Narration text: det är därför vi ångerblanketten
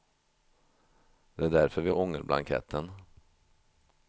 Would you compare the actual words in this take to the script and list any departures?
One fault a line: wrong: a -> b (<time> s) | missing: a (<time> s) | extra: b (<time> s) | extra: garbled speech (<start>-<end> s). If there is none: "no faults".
no faults